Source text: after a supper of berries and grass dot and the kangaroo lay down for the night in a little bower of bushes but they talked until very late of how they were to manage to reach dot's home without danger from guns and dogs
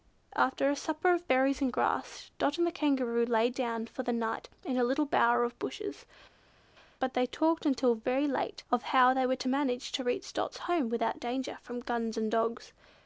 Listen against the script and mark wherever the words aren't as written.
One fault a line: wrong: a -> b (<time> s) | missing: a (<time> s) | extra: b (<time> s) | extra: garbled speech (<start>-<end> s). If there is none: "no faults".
no faults